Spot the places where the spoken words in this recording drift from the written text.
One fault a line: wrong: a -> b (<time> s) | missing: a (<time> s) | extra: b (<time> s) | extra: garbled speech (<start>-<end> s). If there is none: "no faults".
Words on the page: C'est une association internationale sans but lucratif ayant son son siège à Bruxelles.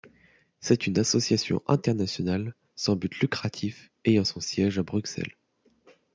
missing: son (4.4 s)